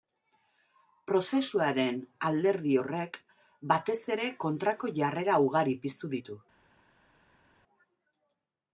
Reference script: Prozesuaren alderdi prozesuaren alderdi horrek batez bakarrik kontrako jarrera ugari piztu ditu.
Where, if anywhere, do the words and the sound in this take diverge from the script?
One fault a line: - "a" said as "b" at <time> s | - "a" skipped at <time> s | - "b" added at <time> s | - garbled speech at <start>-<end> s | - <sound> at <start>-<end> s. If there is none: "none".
- "prozesuaren alderdi" skipped at 2.7 s
- "bakarrik" said as "ere" at 4.2 s